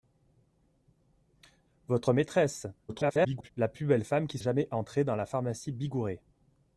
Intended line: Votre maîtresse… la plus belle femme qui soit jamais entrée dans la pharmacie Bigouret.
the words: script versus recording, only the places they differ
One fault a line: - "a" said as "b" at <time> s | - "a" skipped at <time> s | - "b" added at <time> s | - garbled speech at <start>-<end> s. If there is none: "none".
- garbled speech at 2.9-3.5 s
- "soit" skipped at 4.4 s